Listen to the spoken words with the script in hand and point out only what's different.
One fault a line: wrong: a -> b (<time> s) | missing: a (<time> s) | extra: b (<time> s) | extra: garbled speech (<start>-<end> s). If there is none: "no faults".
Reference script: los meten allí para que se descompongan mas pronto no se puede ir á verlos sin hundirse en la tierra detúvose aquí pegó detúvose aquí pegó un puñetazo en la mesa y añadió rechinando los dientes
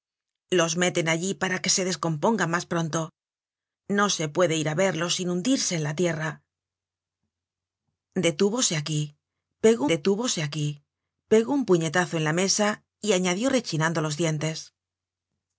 no faults